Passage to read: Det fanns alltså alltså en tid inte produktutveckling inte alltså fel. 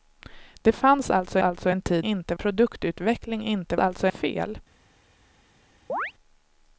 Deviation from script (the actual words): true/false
false